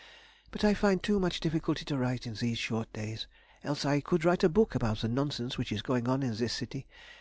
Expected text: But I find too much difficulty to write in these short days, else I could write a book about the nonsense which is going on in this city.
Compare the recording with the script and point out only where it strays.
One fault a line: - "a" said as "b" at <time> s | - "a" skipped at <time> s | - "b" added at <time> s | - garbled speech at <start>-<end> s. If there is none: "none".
none